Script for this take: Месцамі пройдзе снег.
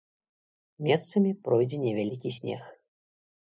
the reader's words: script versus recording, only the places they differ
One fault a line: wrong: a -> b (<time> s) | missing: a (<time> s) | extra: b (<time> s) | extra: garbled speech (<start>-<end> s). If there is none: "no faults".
extra: невялікі (1.9 s)